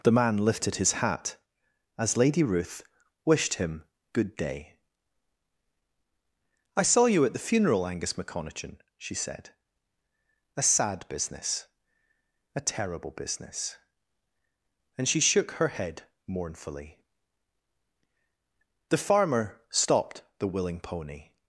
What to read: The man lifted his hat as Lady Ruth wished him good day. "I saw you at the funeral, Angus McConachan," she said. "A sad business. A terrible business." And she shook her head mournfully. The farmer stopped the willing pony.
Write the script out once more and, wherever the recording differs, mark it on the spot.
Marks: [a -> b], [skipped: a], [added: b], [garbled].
The man lifted his hat as Lady Ruth wished him good day. "I saw you at the funeral, Angus McConachan," she said. "A sad business. A terrible business." And she shook her head mournfully. The farmer stopped the willing pony.